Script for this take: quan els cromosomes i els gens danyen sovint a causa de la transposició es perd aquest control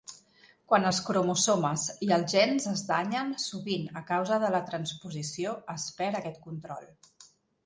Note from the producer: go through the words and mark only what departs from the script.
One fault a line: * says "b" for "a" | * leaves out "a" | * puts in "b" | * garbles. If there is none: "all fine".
* puts in "es"